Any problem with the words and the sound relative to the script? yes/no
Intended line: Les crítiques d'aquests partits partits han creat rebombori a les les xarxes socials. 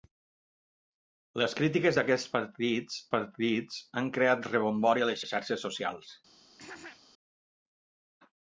yes